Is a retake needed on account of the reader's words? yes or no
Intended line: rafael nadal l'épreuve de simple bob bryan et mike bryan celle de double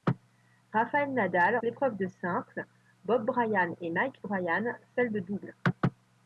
no